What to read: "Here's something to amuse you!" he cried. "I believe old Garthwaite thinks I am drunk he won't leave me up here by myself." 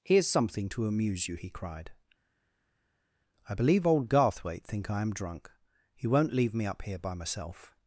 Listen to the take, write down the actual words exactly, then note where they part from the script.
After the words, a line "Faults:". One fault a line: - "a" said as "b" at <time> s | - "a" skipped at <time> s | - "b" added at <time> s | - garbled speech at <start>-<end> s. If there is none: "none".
"Here's something to amuse you!" he cried. "I believe old Garthwaite think I am drunk he won't leave me up here by myself."
Faults:
- "thinks" said as "think" at 4.6 s